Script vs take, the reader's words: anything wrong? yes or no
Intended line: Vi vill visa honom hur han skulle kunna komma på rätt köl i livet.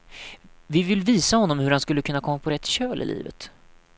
no